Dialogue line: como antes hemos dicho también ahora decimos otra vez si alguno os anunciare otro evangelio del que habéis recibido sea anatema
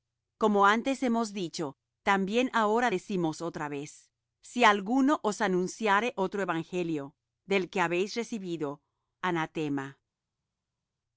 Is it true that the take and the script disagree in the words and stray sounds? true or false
true